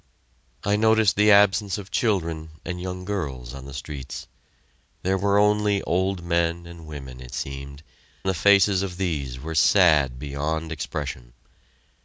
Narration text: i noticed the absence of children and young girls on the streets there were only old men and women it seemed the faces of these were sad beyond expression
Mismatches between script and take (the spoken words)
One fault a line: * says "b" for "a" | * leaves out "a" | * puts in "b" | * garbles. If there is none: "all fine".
all fine